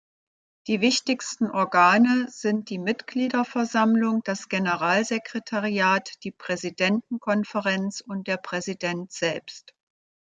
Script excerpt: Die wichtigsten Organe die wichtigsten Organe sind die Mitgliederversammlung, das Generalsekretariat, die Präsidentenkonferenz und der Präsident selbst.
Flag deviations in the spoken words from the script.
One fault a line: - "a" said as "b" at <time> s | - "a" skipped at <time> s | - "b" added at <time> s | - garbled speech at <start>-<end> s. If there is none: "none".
- "die wichtigsten Organe" skipped at 2.2 s